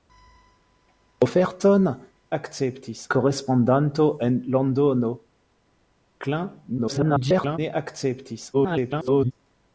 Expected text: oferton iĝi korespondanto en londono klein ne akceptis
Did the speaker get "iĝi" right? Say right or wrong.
wrong